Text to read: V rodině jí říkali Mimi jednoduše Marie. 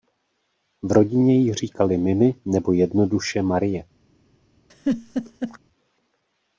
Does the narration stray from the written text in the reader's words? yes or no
yes